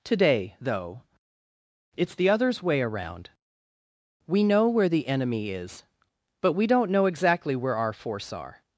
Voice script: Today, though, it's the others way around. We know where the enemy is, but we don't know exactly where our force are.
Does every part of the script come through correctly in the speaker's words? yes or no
yes